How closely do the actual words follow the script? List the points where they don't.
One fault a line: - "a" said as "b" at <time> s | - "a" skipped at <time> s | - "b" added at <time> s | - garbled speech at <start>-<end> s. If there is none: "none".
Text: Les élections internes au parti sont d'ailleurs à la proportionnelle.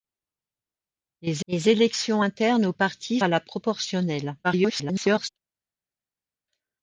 - "les" added at 1.5 s
- "sont d'ailleurs" skipped at 3.2 s
- garbled speech at 4.4-5.3 s